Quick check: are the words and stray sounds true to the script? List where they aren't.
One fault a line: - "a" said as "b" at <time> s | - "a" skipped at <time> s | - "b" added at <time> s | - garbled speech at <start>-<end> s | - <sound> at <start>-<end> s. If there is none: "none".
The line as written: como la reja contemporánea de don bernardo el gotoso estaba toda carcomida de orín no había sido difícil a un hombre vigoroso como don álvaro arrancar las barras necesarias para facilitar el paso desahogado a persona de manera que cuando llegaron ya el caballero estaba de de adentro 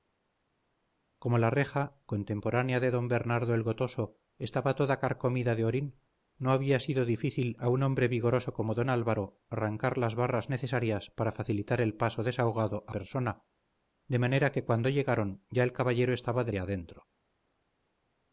none